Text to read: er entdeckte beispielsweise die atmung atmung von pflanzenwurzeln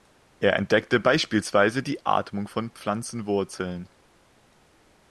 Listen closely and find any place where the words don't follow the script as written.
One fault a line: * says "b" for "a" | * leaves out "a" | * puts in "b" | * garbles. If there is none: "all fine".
* leaves out "atmung"